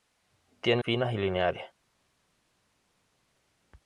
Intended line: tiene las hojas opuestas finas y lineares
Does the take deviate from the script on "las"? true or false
true